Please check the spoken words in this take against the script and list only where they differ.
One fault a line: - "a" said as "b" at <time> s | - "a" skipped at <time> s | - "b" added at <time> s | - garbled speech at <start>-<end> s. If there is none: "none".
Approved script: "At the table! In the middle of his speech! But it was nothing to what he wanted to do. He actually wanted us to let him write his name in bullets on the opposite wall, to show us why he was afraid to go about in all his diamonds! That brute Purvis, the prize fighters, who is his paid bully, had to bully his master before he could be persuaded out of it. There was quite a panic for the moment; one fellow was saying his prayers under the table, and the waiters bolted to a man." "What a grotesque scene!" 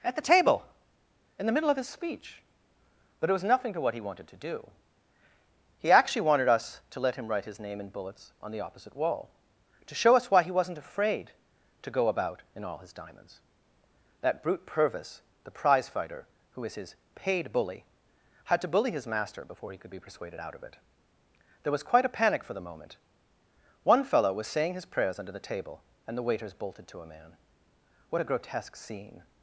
- "was" said as "wasn't" at 10.5 s
- "fighters" said as "fighter" at 15.9 s